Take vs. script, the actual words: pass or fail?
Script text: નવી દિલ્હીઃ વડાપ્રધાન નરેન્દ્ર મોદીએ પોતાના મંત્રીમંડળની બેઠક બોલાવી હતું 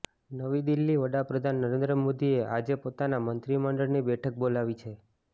fail